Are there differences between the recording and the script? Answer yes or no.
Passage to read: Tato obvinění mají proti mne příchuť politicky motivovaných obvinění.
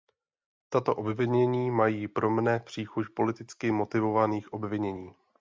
yes